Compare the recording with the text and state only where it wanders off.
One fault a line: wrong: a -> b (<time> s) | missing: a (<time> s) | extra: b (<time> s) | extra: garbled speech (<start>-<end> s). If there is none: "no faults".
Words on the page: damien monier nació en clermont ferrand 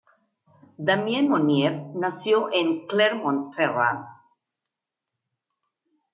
no faults